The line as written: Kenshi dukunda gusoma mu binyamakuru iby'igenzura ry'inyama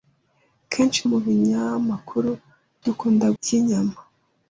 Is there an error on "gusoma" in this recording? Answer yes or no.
yes